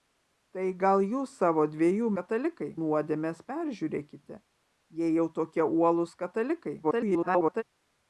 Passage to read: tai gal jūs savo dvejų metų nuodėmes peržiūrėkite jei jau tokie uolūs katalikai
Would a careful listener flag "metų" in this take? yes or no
yes